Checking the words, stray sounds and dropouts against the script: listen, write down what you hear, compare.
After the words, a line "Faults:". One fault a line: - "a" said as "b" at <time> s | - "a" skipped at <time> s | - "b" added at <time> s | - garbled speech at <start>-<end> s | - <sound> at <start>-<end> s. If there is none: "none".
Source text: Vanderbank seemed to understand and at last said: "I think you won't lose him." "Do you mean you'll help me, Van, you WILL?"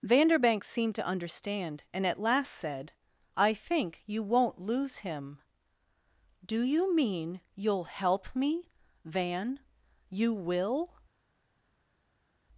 Vanderbank seemed to understand and at last said: "I think you won't lose him." "Do you mean you'll help me, Van, you WILL?"
Faults:
none